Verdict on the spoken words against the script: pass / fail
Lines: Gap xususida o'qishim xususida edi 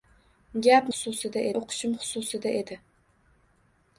pass